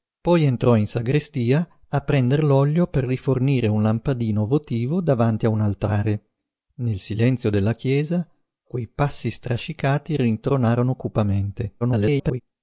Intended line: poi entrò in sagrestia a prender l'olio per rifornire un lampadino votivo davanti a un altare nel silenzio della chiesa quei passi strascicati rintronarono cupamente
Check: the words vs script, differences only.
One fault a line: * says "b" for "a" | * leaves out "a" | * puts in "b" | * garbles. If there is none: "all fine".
* garbles